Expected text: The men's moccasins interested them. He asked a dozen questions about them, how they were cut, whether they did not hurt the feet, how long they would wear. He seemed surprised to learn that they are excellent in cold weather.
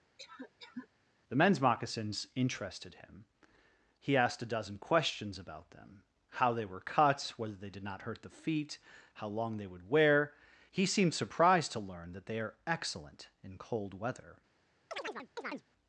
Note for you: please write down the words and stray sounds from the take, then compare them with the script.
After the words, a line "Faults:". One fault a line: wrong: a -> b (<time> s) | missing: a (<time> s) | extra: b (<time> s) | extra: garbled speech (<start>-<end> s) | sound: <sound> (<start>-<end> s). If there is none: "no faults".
The men's moccasins interested him. He asked a dozen questions about them, how they were cut, whether they did not hurt the feet, how long they would wear. He seemed surprised to learn that they are excellent in cold weather.
Faults:
sound: cough (0.2-0.9 s)
wrong: them -> him (3.0 s)
sound: chirp (14.9-15.7 s)